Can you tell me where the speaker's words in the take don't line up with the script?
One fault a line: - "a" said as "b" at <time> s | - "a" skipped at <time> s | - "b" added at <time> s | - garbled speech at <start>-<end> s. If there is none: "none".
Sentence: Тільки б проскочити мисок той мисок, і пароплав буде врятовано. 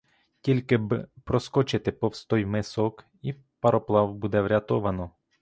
- "мисок" said as "повз" at 1.9 s